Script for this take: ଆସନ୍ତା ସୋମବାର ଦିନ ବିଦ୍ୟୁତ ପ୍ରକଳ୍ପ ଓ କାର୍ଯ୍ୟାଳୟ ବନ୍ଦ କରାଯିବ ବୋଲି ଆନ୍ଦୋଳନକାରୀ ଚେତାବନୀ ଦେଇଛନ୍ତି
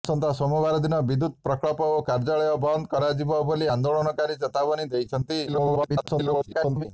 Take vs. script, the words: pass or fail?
fail